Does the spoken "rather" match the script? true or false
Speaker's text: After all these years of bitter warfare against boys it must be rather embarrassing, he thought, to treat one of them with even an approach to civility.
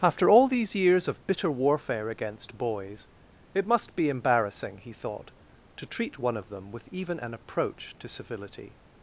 false